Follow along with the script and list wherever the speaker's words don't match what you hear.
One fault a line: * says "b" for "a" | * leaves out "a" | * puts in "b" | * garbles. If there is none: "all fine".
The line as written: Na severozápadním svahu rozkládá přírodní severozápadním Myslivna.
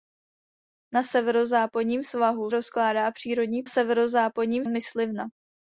all fine